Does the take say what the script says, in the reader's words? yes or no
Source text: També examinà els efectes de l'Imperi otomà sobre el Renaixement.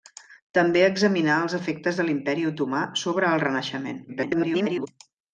no